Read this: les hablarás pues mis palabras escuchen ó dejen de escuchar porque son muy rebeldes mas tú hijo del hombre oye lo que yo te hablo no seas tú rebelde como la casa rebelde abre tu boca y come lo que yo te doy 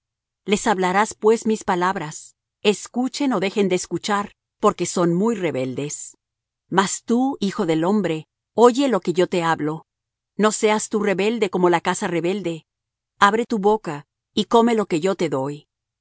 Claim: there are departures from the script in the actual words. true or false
false